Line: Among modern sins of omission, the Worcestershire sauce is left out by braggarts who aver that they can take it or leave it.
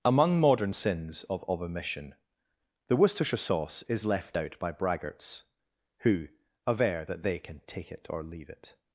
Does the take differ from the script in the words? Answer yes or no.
yes